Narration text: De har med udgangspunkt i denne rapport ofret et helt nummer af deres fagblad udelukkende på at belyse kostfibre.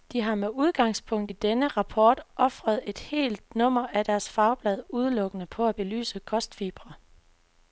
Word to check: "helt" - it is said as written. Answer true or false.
true